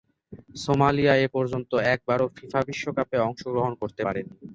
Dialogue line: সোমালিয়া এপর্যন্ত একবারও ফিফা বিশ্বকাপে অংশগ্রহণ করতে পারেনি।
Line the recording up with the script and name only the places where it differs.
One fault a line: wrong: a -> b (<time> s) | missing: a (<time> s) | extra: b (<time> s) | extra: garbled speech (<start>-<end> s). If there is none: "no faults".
no faults